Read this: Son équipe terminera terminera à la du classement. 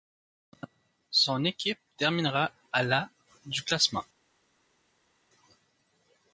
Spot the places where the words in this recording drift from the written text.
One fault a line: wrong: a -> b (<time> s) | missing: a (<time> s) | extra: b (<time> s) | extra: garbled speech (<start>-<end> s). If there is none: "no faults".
missing: terminera (2.5 s)